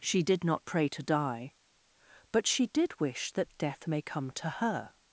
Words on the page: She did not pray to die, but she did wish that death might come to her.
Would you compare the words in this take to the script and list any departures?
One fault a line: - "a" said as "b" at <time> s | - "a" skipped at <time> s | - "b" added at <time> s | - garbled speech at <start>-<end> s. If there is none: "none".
- "might" said as "may" at 3.8 s